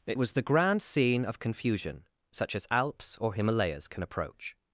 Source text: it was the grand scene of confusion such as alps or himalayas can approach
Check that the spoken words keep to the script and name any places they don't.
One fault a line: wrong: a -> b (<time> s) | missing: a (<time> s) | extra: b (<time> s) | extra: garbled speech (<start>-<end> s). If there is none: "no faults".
no faults